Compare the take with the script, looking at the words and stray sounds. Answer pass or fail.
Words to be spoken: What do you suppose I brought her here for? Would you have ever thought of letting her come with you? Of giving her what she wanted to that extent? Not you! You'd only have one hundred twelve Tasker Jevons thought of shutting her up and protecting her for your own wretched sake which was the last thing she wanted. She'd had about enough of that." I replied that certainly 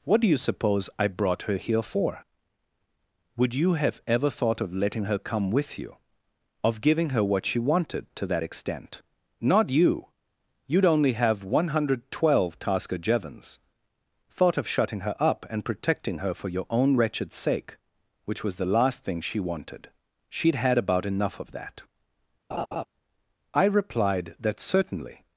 fail